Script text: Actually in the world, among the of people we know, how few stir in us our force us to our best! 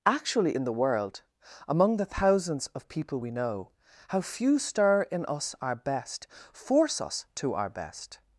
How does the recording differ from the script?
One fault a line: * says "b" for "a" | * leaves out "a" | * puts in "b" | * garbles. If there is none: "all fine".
* puts in "thousands"
* puts in "best"